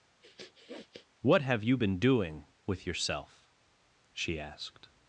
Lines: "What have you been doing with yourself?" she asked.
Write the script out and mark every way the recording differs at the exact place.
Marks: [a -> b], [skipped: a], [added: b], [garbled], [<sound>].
[sniff] "What have you been doing with yourself?" she asked.